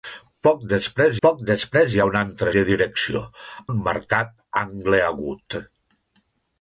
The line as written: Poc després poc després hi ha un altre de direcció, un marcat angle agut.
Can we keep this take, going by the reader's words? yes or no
yes